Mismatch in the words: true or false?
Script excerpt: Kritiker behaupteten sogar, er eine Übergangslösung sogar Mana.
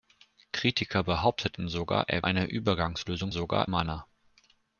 false